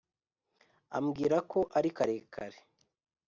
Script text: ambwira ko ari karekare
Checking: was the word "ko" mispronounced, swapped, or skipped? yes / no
no